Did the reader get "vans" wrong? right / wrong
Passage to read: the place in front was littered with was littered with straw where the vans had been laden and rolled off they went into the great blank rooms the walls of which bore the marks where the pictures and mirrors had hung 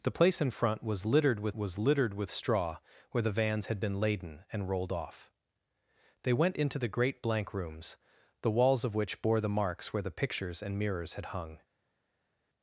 right